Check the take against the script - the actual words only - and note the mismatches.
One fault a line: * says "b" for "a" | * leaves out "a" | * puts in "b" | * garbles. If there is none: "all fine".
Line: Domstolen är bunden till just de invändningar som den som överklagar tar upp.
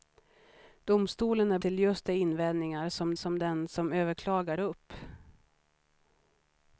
* leaves out "bunden"
* puts in "som"
* leaves out "tar"